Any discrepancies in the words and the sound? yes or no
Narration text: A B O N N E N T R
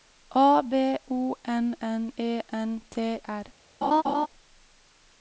yes